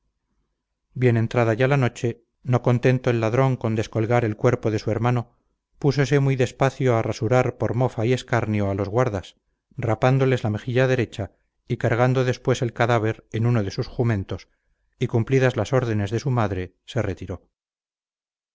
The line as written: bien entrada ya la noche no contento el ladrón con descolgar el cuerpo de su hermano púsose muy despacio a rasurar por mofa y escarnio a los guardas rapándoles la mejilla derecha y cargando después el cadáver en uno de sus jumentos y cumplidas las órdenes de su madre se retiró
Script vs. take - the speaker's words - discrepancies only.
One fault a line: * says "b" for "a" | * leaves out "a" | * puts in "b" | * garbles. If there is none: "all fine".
all fine